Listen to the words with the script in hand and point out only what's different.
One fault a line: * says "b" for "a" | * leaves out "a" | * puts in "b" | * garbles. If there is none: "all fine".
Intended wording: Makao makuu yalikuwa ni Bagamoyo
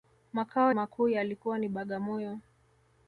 all fine